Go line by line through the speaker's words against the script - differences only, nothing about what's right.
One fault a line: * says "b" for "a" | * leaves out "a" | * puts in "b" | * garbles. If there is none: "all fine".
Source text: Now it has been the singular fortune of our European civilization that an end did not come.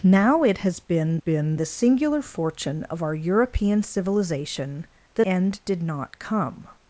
* puts in "been"
* leaves out "an"